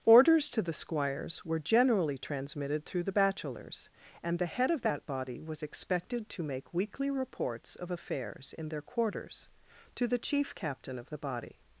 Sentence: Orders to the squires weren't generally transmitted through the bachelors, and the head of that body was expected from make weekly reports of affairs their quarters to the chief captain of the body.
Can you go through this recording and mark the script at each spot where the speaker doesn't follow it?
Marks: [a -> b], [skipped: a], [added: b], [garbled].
Orders to the squires [weren't -> were] generally transmitted through the bachelors, and the head of that body was expected [from -> to] make weekly reports of affairs [added: in] their quarters to the chief captain of the body.